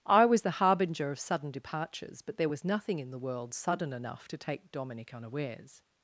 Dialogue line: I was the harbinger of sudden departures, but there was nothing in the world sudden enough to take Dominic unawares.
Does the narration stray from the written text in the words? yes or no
no